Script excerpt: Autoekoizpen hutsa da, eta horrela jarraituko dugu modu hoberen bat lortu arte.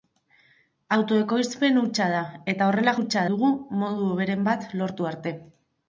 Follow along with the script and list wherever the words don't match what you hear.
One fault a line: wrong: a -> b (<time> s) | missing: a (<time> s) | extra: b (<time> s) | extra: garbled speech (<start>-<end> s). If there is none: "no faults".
wrong: jarraituko -> hutsa (3.0 s)